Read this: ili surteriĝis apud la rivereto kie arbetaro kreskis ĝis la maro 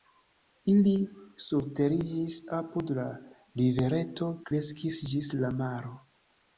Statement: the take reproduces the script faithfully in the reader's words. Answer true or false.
false